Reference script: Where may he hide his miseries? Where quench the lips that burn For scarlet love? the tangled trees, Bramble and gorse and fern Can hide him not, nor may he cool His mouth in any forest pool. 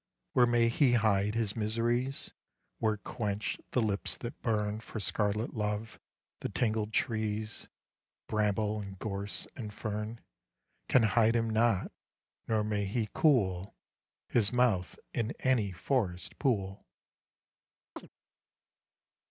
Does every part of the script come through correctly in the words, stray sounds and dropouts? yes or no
no